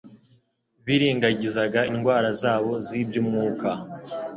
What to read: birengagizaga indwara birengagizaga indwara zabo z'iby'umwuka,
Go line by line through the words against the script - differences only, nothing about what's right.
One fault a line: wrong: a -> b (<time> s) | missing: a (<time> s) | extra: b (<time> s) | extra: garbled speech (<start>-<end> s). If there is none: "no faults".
missing: birengagizaga indwara (2.3 s)